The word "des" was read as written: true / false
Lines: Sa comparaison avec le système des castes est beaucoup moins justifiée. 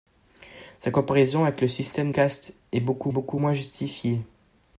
false